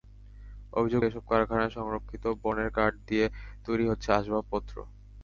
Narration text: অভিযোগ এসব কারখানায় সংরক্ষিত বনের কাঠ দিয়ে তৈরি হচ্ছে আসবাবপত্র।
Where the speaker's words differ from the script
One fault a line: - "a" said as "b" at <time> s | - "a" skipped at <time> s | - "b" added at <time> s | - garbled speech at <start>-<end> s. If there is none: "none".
none